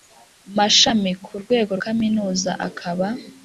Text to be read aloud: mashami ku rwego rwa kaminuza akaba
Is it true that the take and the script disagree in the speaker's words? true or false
true